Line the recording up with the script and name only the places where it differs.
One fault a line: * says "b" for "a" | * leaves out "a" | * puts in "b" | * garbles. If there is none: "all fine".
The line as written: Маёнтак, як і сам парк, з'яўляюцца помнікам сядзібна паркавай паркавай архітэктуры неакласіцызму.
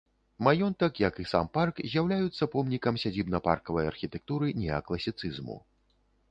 * leaves out "паркавай"